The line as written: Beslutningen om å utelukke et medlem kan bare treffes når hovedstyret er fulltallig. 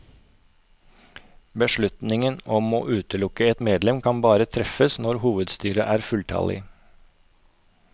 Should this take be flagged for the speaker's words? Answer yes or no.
no